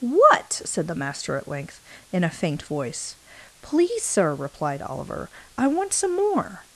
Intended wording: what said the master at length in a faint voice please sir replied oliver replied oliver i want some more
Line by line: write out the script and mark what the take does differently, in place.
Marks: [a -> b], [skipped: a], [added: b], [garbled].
what said the master at length in a faint voice please sir replied oliver [skipped: replied oliver] i want some more